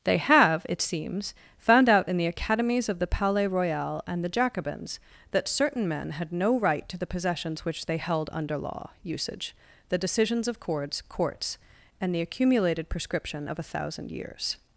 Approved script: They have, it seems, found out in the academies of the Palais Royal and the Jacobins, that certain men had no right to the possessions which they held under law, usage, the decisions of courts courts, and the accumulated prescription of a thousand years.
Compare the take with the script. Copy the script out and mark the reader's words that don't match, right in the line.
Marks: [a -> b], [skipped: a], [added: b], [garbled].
They have, it seems, found out in the academies of the Palais Royal and the Jacobins, that certain men had no right to the possessions which they held under law, usage, the decisions of courts courts, and the accumulated prescription of a thousand years.